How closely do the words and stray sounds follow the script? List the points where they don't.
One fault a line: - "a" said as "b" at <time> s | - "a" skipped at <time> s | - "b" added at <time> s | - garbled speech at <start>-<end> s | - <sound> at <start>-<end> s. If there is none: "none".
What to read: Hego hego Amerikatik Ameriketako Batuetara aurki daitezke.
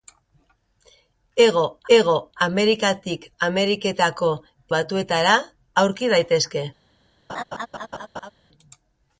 - laugh at 7.3-8.3 s